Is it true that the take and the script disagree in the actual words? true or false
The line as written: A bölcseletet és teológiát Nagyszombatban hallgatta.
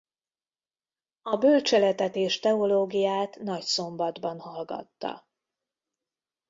false